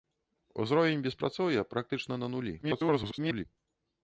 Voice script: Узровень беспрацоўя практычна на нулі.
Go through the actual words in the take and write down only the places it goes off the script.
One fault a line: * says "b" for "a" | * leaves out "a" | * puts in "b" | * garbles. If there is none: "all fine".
* garbles